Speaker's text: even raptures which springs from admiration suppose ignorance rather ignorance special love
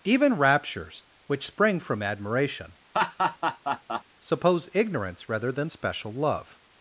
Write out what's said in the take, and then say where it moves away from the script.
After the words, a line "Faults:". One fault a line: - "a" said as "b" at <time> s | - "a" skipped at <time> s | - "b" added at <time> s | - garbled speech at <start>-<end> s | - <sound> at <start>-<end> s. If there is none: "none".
even raptures which spring from admiration suppose ignorance rather than special love
Faults:
- "springs" said as "spring" at 1.4 s
- laugh at 2.9-4.0 s
- "ignorance" said as "than" at 5.5 s